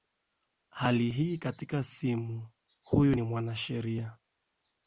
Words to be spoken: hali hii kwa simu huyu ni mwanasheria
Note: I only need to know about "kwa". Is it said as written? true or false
false